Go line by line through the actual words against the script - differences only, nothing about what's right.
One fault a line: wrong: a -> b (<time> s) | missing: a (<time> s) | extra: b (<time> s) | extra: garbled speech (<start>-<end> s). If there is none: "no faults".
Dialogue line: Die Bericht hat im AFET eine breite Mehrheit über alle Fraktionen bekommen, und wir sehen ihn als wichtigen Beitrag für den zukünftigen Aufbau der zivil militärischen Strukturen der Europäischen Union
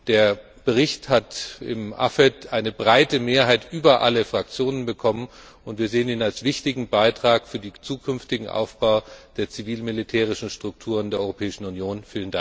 wrong: Die -> Der (0.1 s)